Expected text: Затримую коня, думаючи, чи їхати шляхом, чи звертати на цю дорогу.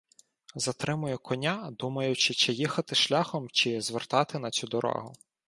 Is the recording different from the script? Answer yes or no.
no